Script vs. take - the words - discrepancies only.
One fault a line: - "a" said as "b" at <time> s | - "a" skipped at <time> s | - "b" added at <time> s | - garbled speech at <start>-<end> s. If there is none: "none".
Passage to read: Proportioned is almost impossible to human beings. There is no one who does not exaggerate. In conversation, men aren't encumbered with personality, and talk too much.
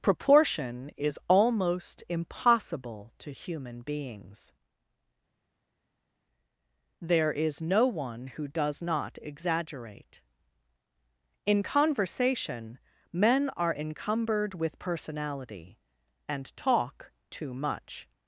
- "Proportioned" said as "Proportion" at 0.0 s
- "aren't" said as "are" at 13.6 s